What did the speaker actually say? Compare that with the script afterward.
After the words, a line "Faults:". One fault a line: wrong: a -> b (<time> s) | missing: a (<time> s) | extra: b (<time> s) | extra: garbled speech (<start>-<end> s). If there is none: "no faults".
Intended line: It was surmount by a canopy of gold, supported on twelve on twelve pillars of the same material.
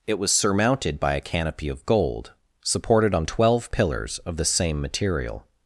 It was surmounted by a canopy of gold, supported on twelve pillars of the same material.
Faults:
wrong: surmount -> surmounted (0.3 s)
missing: on twelve (3.7 s)